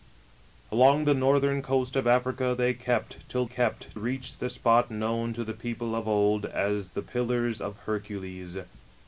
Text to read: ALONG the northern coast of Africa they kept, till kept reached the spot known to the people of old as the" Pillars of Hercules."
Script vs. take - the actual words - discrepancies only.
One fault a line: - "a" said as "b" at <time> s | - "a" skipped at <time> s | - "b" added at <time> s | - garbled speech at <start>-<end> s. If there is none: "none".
none